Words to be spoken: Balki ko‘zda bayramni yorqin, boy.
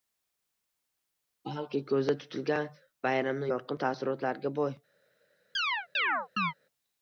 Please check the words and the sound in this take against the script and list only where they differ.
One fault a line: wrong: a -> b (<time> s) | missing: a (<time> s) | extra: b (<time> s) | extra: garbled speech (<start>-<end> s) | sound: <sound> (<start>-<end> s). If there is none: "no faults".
extra: tutilgan (2.2 s)
extra: taassurotlarga (3.8 s)
sound: chirp (5.5-6.5 s)